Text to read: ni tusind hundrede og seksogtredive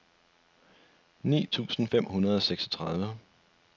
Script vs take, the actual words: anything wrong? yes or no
yes